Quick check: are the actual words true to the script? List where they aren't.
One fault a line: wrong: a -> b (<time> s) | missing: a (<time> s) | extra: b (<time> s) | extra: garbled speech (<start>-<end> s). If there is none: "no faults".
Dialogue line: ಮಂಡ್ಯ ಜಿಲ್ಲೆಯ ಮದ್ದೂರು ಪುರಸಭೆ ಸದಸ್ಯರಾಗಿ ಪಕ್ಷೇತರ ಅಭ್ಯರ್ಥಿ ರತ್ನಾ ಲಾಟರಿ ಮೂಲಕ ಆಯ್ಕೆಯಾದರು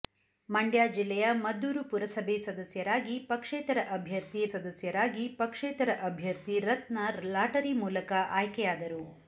extra: ಸದಸ್ಯರಾಗಿ ಪಕ್ಷೇತರ ಅಭ್ಯರ್ಥಿ (4.5 s)